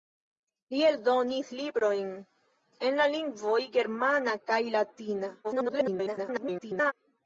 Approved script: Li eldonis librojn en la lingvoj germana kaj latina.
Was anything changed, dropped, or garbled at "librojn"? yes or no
no